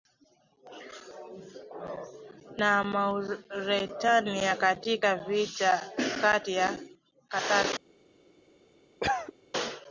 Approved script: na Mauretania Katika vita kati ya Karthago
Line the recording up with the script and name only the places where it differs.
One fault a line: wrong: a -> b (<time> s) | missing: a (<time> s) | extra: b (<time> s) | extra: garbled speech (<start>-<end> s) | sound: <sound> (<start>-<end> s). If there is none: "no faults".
sound: cough (9.0-9.3 s)